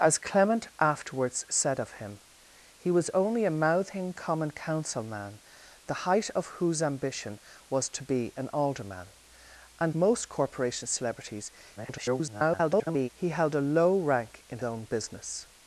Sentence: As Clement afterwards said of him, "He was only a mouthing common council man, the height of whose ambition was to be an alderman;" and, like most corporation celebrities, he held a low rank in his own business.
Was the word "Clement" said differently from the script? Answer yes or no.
no